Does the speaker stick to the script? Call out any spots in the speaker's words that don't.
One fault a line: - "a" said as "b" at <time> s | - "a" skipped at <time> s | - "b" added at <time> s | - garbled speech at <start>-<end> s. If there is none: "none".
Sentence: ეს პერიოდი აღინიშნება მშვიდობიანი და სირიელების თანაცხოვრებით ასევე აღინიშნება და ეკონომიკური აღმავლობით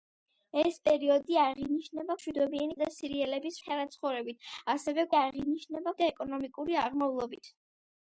none